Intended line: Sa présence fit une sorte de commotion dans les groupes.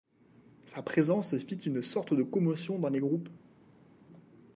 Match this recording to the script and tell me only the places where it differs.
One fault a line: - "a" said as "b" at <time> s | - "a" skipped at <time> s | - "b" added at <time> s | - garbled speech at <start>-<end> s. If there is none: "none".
none